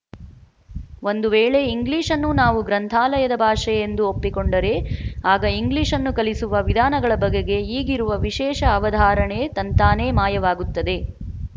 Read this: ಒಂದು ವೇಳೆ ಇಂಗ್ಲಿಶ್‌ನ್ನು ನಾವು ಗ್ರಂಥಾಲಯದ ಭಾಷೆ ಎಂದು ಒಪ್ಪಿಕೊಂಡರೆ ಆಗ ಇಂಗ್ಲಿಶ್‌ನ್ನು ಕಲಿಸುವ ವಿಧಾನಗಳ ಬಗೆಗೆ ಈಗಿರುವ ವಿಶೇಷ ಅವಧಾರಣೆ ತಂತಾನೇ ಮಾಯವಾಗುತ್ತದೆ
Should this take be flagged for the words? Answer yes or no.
no